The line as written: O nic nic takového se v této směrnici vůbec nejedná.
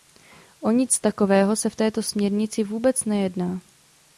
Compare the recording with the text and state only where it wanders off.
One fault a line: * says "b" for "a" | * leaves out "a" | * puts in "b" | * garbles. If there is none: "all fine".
* leaves out "nic"